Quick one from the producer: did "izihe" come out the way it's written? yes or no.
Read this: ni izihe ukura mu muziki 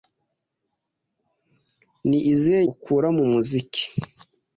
yes